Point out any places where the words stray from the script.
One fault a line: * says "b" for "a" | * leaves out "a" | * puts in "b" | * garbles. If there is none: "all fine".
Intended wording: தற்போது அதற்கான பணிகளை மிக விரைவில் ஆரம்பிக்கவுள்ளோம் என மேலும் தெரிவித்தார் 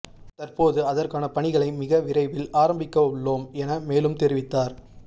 all fine